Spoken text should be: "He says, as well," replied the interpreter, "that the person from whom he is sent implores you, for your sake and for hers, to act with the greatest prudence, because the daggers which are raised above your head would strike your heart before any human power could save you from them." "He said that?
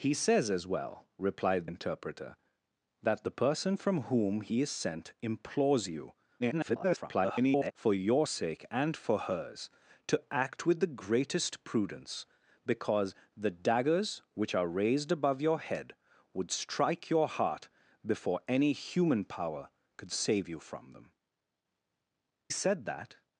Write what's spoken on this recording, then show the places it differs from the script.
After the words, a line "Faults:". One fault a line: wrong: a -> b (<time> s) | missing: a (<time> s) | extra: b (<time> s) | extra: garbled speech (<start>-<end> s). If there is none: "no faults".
"He says, as well," replied interpreter, "that the person from whom he is sent implores you, [garbled] for your sake and for hers, to act with the greatest prudence, because the daggers which are raised above your head would strike your heart before any human power could save you from them." "Said that?
Faults:
missing: the (1.7 s)
extra: garbled speech (6.4-7.7 s)
missing: He (21.1 s)